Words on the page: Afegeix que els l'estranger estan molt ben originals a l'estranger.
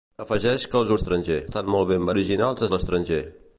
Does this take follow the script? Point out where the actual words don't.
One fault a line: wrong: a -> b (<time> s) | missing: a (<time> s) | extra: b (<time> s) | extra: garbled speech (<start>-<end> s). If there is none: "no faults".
no faults